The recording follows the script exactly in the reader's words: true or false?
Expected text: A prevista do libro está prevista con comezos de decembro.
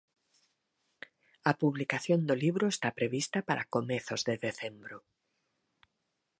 false